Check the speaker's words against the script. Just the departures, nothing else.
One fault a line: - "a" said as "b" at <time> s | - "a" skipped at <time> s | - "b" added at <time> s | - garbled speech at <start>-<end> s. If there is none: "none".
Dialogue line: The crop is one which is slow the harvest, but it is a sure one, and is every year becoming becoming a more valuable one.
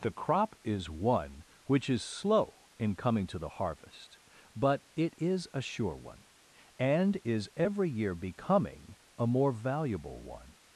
- "in coming to" added at 2.8 s
- "becoming" skipped at 8.9 s